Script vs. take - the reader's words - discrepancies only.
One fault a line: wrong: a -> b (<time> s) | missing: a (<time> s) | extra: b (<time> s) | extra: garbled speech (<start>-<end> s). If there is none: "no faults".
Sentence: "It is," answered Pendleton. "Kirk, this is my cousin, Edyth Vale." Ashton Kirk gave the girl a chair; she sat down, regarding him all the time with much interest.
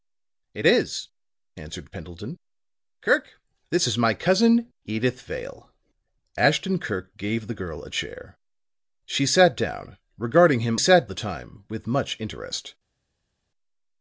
wrong: all -> sat (10.8 s)